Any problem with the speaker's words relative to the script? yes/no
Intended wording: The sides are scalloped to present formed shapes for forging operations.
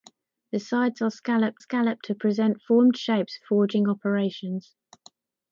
yes